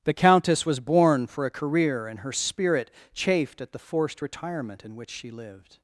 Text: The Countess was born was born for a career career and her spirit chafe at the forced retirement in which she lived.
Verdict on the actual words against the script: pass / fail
fail